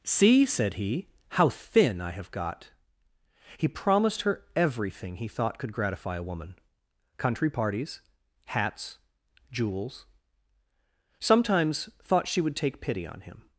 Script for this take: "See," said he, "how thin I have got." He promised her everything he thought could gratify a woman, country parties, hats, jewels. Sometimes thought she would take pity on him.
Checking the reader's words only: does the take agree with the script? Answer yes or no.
yes